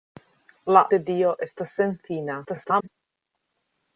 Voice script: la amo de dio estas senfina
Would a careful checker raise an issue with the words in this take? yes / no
yes